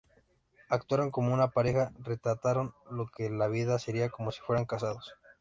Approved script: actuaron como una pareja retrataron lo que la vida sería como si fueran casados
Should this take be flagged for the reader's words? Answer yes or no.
no